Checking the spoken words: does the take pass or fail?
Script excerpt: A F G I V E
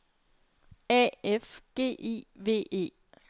pass